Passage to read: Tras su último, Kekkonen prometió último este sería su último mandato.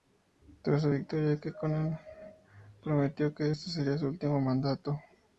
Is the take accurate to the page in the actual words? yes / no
no